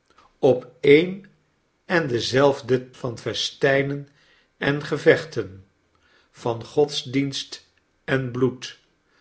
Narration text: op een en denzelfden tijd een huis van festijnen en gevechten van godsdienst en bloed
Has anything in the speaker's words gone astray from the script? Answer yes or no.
yes